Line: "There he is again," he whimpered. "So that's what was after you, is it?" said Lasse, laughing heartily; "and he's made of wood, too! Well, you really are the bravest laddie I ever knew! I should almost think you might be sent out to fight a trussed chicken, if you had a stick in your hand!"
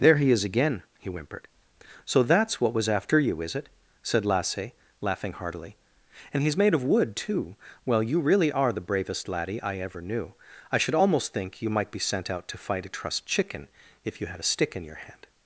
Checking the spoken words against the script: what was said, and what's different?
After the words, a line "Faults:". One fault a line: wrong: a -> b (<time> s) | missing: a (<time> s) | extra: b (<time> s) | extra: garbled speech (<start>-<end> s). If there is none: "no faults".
"There he is again," he whimpered. "So that's what was after you, is it?" said Lasse, laughing heartily; "and he's made of wood, too! Well, you really are the bravest laddie I ever knew! I should almost think you might be sent out to fight a trussed chicken, if you had a stick in your hand!"
Faults:
no faults